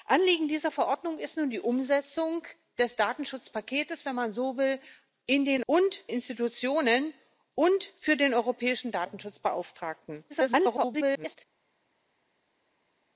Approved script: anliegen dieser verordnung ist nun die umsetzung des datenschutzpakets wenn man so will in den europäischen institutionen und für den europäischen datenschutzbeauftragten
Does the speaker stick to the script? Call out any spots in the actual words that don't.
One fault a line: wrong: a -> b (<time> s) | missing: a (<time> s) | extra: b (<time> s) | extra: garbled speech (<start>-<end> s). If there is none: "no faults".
wrong: europäischen -> und (5.7 s)
extra: garbled speech (10.3-11.4 s)